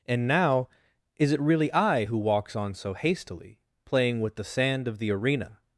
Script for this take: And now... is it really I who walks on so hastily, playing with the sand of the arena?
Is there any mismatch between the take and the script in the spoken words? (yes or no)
no